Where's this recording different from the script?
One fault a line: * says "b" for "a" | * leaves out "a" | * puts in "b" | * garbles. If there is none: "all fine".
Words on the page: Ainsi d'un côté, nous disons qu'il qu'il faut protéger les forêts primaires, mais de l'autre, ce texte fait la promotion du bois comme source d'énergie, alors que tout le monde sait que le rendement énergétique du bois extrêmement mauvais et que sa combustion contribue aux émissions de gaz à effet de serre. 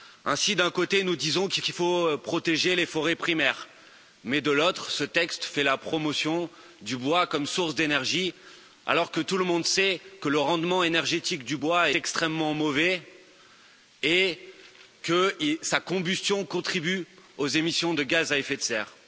all fine